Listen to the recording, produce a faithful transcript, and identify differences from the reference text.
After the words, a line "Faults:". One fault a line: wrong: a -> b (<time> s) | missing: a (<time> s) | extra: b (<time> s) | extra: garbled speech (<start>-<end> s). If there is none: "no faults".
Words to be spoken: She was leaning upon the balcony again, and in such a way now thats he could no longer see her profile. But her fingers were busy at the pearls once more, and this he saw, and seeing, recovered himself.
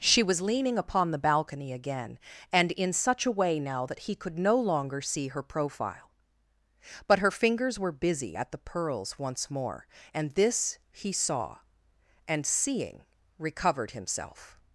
She was leaning upon the balcony again, and in such a way now that he could no longer see her profile. But her fingers were busy at the pearls once more, and this he saw, and seeing, recovered himself.
Faults:
wrong: thats -> that (3.8 s)